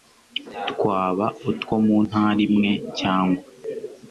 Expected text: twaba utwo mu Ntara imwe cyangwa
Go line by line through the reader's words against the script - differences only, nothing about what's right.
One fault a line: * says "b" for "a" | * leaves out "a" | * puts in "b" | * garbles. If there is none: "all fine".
all fine